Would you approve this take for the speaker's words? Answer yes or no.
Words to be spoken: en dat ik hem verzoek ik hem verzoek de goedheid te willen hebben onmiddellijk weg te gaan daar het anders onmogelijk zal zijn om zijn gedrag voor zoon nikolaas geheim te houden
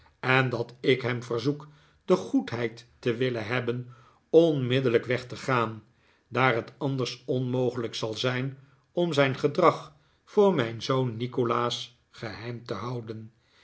no